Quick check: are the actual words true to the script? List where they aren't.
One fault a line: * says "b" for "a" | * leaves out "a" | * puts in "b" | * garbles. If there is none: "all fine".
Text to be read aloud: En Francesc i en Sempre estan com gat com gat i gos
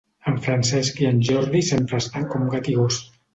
* puts in "Jordi"
* leaves out "com gat"